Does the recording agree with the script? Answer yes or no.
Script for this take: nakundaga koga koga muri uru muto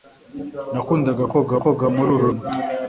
yes